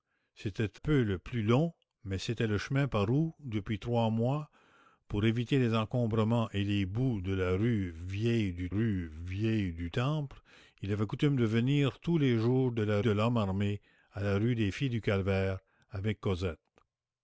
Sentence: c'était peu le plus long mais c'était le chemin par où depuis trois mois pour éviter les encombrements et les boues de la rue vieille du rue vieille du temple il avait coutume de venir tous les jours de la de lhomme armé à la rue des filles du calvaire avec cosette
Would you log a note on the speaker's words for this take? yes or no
no